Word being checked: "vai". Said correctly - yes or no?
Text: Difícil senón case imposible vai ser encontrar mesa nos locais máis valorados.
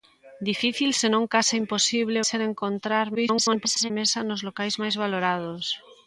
no